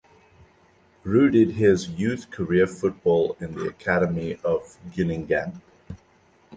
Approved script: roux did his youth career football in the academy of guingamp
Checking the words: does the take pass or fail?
pass